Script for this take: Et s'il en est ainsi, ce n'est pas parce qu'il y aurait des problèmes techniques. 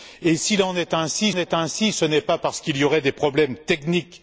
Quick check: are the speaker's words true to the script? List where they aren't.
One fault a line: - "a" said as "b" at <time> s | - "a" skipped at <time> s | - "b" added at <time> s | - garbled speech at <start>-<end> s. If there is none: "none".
- "est ainsi" added at 1.4 s